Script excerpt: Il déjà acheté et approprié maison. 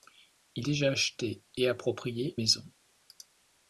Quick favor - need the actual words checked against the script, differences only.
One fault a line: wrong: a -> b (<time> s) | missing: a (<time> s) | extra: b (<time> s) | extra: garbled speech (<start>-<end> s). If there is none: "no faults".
no faults